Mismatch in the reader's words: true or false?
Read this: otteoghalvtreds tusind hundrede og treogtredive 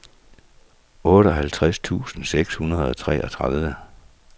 true